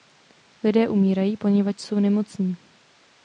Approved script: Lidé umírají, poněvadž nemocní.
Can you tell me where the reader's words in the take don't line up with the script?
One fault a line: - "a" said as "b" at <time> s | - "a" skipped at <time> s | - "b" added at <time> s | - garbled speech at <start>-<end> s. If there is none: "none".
- "jsou" added at 1.8 s